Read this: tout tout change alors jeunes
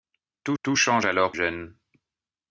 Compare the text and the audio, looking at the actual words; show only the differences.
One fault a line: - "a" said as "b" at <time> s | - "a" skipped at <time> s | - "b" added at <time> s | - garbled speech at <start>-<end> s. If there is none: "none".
none